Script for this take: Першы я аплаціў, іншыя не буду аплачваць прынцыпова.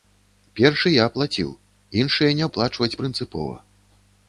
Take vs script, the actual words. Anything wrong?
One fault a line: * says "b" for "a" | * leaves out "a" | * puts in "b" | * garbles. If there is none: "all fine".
* leaves out "буду"